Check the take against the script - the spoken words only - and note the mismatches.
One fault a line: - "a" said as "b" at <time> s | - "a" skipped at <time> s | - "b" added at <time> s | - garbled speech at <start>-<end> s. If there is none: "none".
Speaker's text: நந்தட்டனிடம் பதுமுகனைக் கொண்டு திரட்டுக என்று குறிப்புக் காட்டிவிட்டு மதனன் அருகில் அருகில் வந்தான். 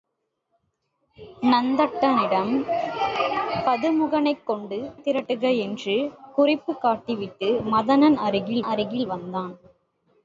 none